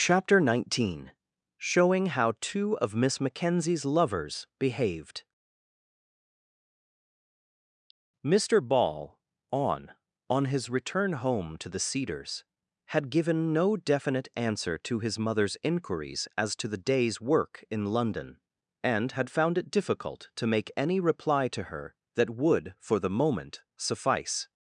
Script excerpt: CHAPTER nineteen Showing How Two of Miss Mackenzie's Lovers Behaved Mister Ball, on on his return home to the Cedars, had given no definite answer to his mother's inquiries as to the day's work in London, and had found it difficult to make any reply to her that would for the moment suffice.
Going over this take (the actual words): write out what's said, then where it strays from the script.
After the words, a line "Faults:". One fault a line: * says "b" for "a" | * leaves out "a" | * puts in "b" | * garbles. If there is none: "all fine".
CHAPTER nineteen Showing How Two of Miss Mackenzie's Lovers Behaved Mister Ball, on on his return home to the Cedars, had given no definite answer to his mother's inquiries as to the day's work in London, and had found it difficult to make any reply to her that would for the moment suffice.
Faults:
all fine